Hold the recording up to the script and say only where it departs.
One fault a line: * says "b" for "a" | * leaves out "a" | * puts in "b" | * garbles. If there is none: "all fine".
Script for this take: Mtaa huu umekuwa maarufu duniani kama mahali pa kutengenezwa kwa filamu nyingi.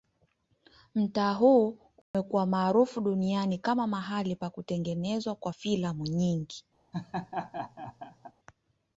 all fine